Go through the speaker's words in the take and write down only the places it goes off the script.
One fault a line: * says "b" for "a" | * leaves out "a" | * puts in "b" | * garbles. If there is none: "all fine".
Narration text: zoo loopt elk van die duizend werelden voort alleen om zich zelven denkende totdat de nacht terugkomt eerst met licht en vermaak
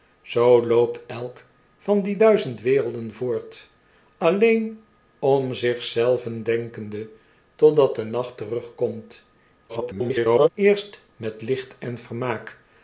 * garbles